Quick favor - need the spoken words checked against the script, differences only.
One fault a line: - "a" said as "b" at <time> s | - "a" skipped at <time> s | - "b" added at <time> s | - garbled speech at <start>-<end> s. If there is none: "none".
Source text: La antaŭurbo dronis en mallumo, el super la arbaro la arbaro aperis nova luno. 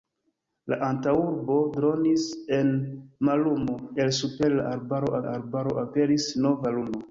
none